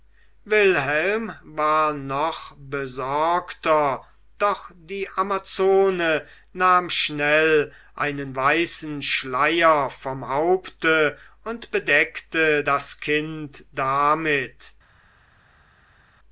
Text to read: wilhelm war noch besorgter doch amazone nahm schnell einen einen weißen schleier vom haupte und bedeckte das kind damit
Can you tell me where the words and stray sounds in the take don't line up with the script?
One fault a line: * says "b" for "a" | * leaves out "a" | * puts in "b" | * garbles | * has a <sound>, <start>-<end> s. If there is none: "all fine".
* puts in "die"
* leaves out "einen"